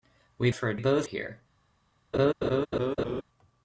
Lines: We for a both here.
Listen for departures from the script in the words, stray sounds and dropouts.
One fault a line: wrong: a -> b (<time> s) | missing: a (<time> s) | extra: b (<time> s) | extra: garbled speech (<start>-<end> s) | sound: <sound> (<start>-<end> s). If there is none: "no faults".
sound: laugh (2.1-3.2 s)